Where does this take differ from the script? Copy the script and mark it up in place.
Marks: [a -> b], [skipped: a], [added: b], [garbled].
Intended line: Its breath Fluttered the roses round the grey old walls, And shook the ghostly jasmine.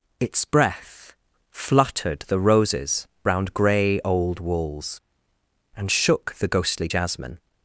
Its breath Fluttered the roses round [skipped: the] grey old walls, And shook the ghostly jasmine.